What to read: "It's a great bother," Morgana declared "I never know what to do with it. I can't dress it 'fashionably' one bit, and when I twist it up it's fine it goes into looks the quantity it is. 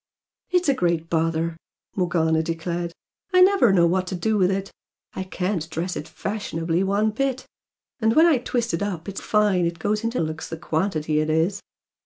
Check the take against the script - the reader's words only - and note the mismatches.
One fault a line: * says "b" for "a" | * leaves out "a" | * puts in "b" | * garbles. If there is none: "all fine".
all fine